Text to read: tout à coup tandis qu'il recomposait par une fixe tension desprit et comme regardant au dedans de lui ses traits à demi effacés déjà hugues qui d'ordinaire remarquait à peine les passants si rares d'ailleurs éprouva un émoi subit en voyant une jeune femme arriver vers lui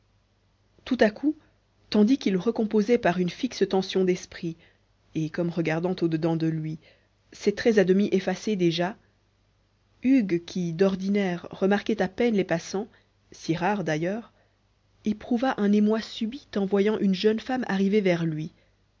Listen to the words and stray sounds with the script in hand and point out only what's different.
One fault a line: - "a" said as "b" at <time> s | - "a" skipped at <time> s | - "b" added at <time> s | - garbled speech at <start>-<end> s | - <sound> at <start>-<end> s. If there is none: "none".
none